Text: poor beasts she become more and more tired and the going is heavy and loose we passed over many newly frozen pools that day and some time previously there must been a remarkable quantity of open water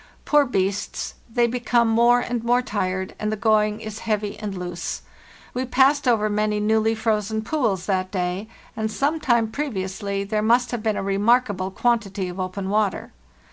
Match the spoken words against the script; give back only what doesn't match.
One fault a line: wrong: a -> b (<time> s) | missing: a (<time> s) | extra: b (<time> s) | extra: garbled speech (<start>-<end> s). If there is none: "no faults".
wrong: she -> they (1.3 s)
extra: have (10.7 s)